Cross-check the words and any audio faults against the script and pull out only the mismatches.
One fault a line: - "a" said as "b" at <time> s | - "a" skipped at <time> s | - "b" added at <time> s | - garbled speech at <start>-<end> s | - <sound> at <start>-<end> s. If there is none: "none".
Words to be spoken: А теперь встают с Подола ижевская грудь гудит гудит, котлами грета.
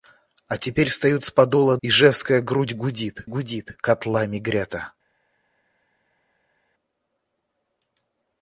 none